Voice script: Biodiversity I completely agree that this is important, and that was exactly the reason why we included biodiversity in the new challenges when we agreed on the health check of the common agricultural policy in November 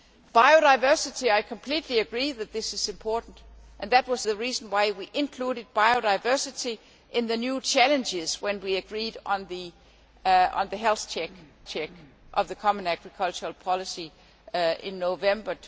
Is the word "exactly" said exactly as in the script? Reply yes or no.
no